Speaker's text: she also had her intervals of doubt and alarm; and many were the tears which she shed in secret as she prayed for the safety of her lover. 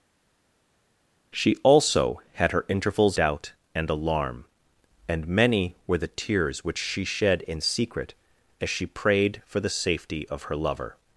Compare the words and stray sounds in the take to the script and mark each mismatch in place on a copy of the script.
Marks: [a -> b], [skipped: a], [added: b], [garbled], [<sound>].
she also had her intervals [skipped: of] doubt and alarm; and many were the tears which she shed in secret as she prayed for the safety of her lover.